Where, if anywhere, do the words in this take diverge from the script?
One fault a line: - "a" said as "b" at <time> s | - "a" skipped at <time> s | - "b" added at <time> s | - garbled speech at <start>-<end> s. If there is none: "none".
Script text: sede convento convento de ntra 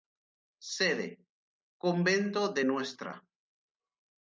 - "convento" skipped at 2.5 s